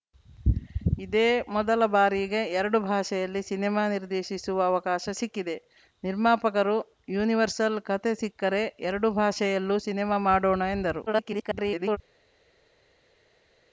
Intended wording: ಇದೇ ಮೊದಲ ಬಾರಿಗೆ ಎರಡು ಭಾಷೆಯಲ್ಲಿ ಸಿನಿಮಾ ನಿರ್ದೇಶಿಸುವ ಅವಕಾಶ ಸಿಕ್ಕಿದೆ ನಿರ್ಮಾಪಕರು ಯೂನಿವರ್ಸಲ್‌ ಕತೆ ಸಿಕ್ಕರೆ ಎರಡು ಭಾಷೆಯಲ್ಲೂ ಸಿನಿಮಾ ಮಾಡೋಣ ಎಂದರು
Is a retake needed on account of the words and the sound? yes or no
yes